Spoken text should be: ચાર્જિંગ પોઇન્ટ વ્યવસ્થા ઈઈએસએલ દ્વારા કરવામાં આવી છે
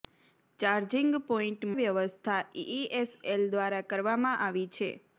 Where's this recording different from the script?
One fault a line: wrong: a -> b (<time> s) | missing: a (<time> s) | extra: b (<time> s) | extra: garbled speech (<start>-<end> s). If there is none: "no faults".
no faults